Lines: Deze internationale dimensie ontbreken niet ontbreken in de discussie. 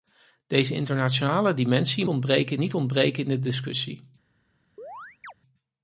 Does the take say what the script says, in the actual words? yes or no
yes